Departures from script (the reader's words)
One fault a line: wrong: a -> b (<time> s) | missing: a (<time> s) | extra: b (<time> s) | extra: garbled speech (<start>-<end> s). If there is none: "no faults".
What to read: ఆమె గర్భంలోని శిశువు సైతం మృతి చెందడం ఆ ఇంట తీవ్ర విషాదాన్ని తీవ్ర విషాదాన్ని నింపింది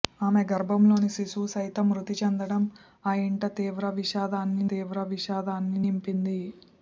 no faults